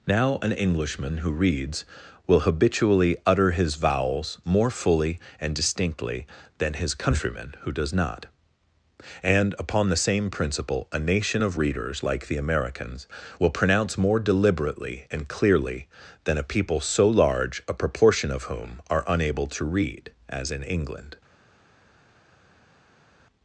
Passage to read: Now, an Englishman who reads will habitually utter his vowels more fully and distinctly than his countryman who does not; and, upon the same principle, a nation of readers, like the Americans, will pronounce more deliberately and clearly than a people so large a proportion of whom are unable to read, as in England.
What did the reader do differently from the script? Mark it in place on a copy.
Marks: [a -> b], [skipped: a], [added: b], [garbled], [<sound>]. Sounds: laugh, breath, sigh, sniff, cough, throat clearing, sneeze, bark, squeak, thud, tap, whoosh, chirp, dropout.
Now, an Englishman who reads will habitually utter his vowels more fully and distinctly than his countryman who does not; and, upon the same principle, a nation of readers, like the Americans, will pronounce more deliberately and clearly than a people so large a proportion of whom are unable to read, as in England.